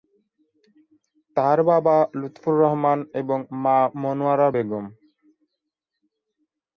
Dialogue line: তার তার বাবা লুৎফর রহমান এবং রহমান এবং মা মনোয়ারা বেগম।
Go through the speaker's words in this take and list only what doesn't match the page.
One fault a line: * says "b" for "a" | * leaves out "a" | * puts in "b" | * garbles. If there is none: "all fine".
* leaves out "তার"
* leaves out "রহমান এবং"